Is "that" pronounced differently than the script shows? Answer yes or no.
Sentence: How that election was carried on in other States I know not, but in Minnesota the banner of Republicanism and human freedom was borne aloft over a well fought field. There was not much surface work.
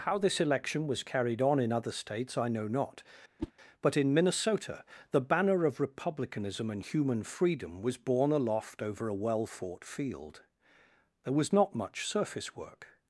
yes